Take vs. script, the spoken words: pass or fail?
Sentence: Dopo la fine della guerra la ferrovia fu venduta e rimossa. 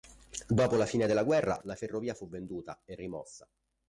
pass